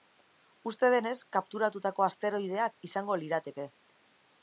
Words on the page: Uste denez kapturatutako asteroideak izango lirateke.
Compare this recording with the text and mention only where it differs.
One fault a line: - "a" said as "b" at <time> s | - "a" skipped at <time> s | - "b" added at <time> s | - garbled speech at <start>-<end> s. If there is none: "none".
none